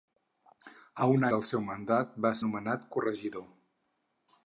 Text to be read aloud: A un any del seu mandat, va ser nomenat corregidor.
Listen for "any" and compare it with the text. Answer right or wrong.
wrong